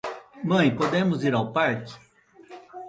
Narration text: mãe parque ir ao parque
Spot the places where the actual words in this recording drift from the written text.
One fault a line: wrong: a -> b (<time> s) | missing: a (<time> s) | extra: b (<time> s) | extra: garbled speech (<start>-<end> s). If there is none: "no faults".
wrong: parque -> podemos (0.7 s)